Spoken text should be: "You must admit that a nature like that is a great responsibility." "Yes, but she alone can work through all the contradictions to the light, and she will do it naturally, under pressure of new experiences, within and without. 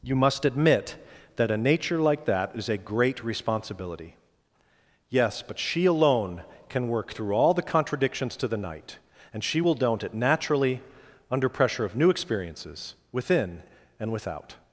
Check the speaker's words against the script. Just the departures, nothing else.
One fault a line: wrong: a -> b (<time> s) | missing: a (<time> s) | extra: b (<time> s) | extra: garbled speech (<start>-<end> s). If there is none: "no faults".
wrong: light -> night (8.6 s)
wrong: do -> don't (9.7 s)